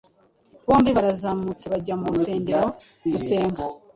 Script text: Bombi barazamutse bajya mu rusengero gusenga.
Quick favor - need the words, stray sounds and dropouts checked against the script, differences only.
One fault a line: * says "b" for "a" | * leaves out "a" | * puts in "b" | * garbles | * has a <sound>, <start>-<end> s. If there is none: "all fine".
all fine